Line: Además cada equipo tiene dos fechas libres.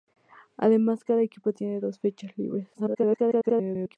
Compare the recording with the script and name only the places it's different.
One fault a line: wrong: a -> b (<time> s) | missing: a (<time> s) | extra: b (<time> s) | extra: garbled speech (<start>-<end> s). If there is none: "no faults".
extra: garbled speech (2.7-4.0 s)